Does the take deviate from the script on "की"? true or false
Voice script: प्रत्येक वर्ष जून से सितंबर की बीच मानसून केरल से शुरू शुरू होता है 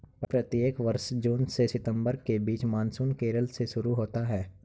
true